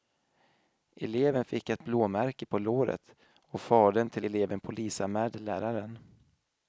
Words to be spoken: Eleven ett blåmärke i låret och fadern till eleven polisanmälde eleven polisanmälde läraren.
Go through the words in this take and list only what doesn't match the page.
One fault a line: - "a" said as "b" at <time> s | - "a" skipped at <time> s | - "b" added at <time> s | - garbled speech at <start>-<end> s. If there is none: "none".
- "fick" added at 1.4 s
- "i" said as "på" at 2.5 s
- "eleven polisanmälde" skipped at 5.4 s